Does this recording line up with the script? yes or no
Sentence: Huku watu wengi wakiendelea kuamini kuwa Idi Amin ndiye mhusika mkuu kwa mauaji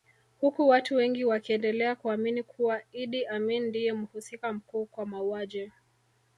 yes